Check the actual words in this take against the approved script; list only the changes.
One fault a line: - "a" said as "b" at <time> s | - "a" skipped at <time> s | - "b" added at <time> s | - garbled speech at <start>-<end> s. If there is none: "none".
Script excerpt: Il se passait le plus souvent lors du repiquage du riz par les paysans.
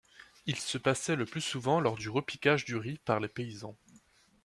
none